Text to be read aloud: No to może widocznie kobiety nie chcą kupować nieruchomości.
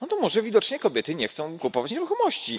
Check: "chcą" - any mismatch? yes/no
no